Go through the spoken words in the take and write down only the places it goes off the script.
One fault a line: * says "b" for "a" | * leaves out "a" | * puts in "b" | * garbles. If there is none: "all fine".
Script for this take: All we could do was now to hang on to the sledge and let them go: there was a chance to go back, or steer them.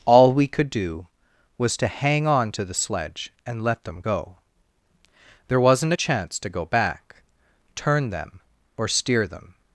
* leaves out "now"
* says "wasn't" for "was"
* puts in "turn them"